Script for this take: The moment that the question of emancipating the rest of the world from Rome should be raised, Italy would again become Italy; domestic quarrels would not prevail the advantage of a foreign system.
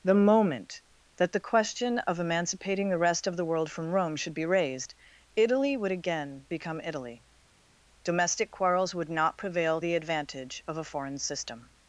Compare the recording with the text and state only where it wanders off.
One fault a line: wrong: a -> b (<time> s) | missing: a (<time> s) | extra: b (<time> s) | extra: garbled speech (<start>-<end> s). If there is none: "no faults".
no faults